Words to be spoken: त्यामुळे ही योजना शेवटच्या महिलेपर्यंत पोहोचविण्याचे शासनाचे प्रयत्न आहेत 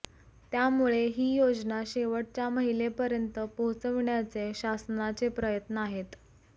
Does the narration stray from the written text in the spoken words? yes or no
no